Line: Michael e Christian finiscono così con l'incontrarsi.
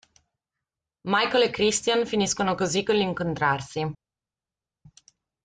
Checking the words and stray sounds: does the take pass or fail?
pass